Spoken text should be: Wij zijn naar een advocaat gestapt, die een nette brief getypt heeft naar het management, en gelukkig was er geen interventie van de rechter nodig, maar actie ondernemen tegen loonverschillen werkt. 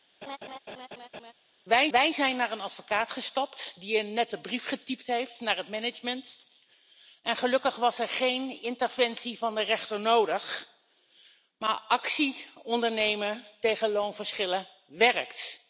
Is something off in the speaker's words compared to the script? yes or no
yes